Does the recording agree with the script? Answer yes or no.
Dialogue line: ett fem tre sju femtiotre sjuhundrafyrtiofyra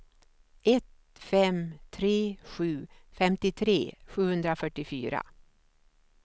yes